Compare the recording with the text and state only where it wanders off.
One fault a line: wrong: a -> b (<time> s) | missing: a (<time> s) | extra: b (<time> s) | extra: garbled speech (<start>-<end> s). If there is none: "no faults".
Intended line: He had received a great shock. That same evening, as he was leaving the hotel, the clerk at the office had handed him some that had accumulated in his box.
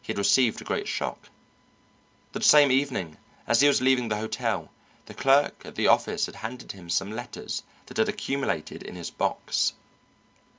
extra: letters (7.1 s)